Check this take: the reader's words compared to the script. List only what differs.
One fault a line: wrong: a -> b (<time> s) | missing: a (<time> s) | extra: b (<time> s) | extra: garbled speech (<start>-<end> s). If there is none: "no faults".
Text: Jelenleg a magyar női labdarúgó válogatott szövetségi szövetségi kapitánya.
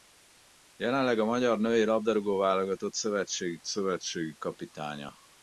no faults